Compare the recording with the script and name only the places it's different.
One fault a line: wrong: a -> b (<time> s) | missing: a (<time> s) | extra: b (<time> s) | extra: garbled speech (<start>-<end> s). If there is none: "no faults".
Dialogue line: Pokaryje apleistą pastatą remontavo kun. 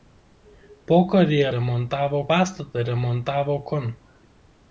wrong: apleistą -> remontavo (1.5 s)